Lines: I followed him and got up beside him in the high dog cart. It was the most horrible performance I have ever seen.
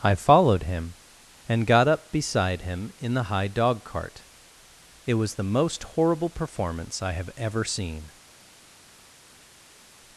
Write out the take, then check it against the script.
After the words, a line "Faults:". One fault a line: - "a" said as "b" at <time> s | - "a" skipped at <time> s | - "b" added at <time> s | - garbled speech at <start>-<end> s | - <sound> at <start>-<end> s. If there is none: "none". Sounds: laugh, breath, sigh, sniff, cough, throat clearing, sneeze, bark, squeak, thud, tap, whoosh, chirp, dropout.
I followed him and got up beside him in the high dog cart. It was the most horrible performance I have ever seen.
Faults:
none